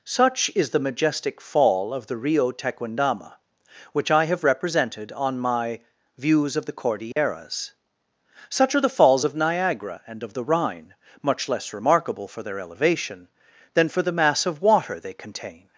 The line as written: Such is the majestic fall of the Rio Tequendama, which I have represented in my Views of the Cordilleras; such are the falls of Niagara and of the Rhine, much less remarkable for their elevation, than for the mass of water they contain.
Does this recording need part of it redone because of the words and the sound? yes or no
yes